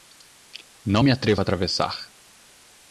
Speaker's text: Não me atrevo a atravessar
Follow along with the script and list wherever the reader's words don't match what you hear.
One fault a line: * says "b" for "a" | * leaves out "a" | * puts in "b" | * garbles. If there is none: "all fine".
all fine